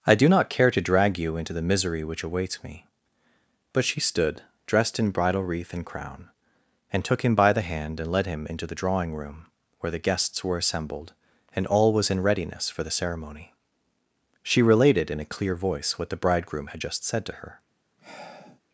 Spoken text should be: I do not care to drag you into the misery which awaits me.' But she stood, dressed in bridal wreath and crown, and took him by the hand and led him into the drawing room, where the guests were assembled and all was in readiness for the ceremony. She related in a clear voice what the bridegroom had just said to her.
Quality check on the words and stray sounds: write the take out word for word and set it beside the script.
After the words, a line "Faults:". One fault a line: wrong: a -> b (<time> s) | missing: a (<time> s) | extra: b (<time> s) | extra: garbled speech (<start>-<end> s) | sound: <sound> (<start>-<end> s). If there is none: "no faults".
I do not care to drag you into the misery which awaits me.' But she stood, dressed in bridal wreath and crown, and took him by the hand and led him into the drawing room, where the guests were assembled and all was in readiness for the ceremony. She related in a clear voice what the bridegroom had just said to her.
Faults:
sound: sigh (18.0-18.6 s)